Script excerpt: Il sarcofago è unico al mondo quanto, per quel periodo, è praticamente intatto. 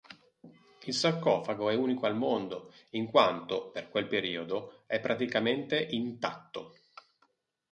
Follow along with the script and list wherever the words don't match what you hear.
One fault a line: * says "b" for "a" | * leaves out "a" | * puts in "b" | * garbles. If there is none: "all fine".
* puts in "in"